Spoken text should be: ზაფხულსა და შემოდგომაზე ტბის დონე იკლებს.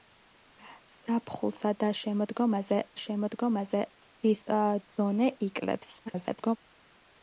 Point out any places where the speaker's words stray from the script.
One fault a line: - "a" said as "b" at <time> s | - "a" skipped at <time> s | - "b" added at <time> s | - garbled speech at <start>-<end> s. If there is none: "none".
- "შემოდგომაზე" added at 3.0 s
- garbled speech at 6.1-6.6 s